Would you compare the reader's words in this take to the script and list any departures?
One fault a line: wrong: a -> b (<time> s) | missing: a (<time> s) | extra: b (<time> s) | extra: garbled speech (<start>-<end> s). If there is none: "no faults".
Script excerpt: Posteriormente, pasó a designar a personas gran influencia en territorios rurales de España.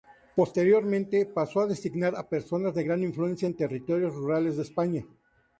extra: de (2.7 s)